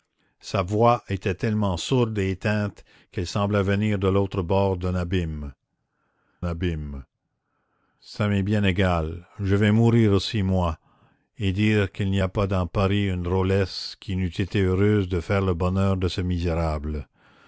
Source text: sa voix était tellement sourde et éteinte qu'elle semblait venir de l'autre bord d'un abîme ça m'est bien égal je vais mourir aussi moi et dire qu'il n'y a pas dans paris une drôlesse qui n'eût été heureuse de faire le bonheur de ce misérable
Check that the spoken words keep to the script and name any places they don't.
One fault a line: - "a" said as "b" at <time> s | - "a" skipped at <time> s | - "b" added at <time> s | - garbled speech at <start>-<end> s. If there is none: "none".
- "abîme" added at 6.4 s